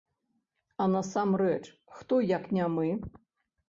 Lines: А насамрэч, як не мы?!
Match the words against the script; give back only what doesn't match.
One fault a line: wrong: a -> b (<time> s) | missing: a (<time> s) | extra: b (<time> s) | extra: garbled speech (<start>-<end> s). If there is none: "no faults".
extra: хто (2.0 s)